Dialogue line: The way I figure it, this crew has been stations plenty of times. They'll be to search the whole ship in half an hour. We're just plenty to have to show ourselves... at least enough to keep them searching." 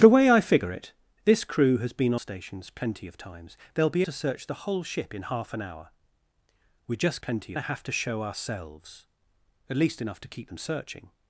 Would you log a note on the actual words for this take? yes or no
no